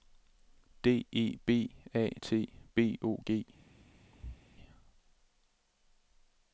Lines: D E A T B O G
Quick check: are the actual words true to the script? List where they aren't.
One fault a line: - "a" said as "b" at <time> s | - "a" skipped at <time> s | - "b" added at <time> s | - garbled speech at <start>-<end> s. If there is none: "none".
- "B" added at 1.4 s